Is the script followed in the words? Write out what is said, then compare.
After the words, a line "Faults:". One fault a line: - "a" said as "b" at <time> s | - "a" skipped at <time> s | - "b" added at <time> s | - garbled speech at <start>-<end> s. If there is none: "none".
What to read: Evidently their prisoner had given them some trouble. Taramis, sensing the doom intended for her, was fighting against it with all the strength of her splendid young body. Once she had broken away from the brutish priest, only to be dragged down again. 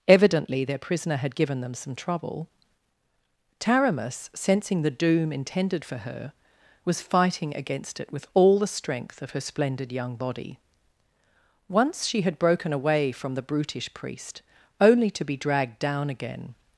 Evidently their prisoner had given them some trouble. Taramis, sensing the doom intended for her, was fighting against it with all the strength of her splendid young body. Once she had broken away from the brutish priest, only to be dragged down again.
Faults:
none